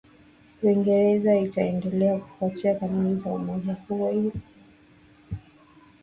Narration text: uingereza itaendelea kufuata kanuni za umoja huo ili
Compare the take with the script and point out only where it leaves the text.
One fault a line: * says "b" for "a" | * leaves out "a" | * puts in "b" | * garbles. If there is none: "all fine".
all fine